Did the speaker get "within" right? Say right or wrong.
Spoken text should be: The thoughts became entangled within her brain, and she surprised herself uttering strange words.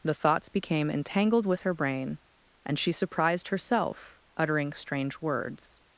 wrong